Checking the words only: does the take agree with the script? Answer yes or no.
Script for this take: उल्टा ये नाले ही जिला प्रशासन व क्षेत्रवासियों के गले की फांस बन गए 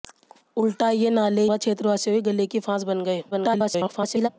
no